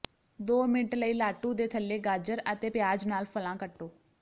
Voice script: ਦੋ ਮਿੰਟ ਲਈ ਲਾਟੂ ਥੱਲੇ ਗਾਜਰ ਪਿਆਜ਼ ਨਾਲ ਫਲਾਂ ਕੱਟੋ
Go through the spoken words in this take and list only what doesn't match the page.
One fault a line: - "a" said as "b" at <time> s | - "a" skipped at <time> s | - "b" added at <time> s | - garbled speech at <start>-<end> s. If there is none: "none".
- "ਦੇ" added at 1.5 s
- "ਅਤੇ" added at 2.5 s